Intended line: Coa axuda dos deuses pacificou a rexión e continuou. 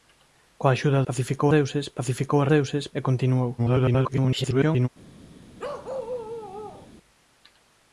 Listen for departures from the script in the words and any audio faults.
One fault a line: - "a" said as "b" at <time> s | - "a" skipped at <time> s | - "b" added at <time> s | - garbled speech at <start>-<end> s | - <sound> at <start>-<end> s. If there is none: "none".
- "dos" said as "pacificou" at 1.1 s
- "rexión" said as "deuses" at 2.5 s
- garbled speech at 3.6-4.9 s
- bark at 5.6-6.9 s